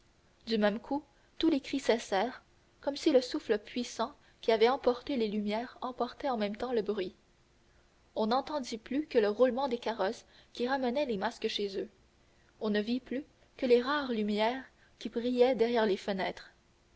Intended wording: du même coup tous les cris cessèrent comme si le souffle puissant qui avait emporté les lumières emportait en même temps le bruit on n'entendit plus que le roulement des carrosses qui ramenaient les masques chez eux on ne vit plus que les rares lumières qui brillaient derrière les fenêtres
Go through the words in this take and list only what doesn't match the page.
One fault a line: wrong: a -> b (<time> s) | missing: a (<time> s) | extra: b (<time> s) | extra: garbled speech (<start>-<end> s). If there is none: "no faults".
no faults